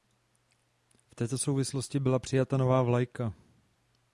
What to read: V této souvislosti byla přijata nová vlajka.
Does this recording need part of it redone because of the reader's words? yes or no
no